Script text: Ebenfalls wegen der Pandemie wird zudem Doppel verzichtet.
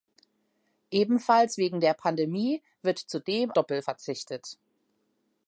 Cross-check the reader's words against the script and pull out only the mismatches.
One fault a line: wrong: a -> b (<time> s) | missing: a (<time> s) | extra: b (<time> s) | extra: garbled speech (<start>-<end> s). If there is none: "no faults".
no faults